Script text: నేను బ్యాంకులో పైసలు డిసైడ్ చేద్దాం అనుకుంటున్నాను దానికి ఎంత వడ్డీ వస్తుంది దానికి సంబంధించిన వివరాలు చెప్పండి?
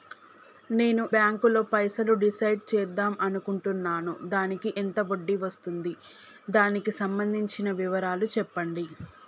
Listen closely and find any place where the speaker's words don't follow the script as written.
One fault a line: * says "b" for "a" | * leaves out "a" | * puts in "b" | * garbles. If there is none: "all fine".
all fine